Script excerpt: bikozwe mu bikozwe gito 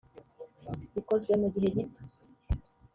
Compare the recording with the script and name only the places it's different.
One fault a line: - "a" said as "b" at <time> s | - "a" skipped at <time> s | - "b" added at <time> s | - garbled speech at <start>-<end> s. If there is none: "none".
- "bikozwe" said as "gihe" at 1.5 s